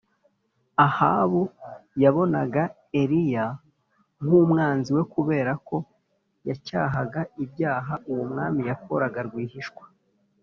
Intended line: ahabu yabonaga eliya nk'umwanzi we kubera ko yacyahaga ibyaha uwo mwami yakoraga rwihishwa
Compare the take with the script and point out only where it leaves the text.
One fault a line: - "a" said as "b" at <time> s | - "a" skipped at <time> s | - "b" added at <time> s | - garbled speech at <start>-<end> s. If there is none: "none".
none